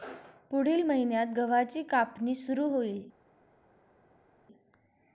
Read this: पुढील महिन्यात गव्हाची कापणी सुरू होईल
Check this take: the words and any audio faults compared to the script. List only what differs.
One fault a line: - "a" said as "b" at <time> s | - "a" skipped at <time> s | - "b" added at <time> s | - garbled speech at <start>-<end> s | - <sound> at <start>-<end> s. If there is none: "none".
none